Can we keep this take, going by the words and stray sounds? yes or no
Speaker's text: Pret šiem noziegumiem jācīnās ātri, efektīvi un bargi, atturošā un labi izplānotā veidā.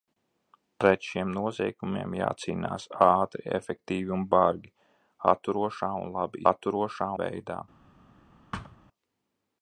no